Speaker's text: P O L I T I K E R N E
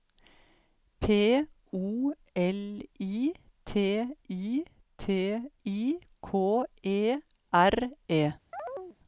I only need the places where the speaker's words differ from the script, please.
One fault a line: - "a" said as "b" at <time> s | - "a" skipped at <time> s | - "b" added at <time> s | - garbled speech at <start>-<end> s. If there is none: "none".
- "T I" added at 5.0 s
- "N" skipped at 7.9 s